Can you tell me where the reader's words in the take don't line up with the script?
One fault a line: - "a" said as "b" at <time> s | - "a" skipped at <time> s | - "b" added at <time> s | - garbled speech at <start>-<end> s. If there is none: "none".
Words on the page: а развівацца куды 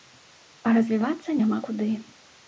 - "няма" added at 1.4 s